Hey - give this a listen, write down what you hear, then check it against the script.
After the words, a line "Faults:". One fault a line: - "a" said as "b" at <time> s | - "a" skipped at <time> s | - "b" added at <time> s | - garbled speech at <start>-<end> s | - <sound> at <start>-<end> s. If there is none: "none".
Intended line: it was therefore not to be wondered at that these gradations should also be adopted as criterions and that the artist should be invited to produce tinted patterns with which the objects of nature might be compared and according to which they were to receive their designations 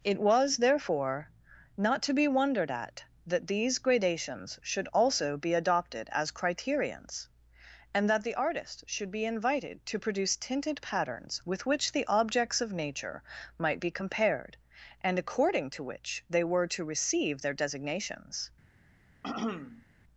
it was therefore not to be wondered at that these gradations should also be adopted as criterions and that the artist should be invited to produce tinted patterns with which the objects of nature might be compared and according to which they were to receive their designations
Faults:
- throat clearing at 19.2-19.9 s